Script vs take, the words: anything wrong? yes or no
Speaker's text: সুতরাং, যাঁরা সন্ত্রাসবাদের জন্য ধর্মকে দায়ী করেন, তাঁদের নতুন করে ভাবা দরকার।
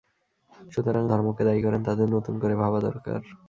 yes